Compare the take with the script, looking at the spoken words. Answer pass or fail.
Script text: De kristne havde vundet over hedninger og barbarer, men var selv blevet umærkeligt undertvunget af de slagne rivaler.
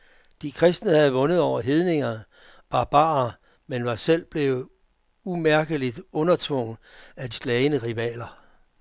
fail